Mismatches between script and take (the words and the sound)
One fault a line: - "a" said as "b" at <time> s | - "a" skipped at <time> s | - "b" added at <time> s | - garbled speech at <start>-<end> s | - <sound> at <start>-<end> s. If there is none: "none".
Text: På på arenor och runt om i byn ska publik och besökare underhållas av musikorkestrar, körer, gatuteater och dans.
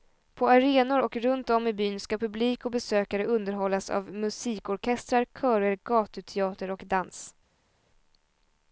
- "på" skipped at 0.5 s